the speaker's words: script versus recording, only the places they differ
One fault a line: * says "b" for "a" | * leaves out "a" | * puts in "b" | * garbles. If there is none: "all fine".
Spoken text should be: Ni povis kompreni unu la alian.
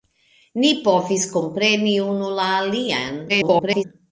* garbles